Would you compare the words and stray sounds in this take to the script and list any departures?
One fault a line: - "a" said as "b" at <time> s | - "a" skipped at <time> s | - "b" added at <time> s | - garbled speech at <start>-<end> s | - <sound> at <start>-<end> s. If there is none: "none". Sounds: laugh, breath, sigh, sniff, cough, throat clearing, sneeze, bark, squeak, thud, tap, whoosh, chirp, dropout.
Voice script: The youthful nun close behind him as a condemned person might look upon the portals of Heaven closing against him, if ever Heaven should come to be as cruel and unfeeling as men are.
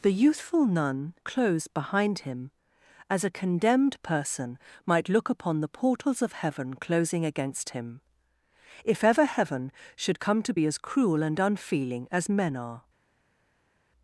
none